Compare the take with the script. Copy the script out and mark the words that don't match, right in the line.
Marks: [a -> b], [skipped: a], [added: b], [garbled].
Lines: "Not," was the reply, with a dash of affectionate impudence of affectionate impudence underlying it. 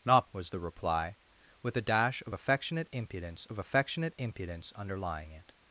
"Not," was the reply, with a dash of affectionate impudence of affectionate impudence underlying it.